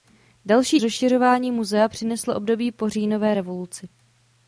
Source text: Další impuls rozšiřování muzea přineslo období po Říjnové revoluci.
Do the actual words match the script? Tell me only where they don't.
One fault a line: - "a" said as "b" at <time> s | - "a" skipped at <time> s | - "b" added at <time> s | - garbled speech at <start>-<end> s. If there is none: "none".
- "impuls" skipped at 0.8 s